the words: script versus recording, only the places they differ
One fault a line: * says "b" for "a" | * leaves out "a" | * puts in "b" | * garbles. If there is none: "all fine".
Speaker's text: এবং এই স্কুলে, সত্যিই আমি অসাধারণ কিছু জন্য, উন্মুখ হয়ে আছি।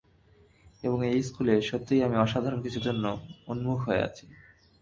all fine